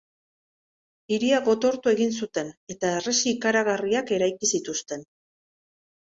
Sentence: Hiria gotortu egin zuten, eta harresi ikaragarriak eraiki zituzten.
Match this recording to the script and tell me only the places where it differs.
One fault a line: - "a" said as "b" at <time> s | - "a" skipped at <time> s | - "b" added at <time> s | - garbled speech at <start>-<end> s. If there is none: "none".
none